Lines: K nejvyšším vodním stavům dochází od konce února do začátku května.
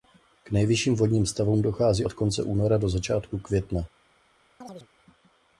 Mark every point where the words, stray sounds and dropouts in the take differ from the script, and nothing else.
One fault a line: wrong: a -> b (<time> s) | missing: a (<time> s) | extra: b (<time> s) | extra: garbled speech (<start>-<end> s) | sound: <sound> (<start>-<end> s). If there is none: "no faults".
sound: chirp (4.6-4.9 s)